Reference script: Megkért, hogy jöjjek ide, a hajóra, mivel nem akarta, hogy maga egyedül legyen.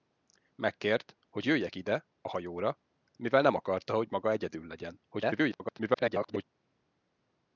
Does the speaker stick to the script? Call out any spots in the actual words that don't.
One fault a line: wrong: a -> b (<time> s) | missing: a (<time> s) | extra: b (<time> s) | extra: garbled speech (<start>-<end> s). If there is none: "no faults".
extra: garbled speech (5.1-6.4 s)